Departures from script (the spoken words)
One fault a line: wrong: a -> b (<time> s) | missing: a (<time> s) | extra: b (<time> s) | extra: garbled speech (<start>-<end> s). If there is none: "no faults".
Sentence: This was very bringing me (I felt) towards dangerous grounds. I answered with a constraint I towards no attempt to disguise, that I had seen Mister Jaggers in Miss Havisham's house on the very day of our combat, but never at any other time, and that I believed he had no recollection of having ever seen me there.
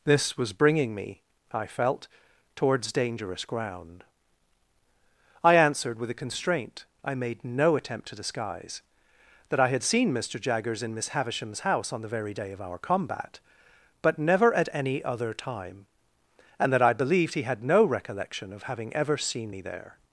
missing: very (0.5 s)
wrong: grounds -> ground (3.5 s)
wrong: towards -> made (7.1 s)